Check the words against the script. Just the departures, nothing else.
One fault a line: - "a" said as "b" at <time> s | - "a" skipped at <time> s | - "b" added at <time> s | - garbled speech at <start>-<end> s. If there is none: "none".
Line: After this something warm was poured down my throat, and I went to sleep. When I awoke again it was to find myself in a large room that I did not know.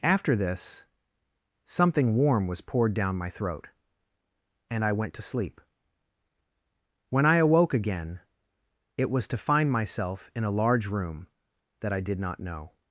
none